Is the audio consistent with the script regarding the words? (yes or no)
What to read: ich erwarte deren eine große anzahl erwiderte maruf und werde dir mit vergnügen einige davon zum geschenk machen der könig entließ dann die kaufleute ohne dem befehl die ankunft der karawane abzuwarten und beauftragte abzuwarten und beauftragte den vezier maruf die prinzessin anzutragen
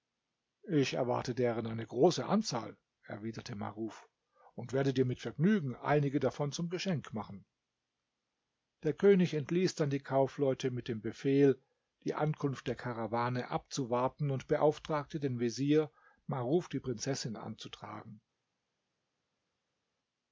no